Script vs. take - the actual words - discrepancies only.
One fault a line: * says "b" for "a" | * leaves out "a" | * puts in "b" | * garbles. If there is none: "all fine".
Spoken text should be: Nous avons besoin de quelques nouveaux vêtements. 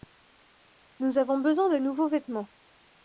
* leaves out "quelques"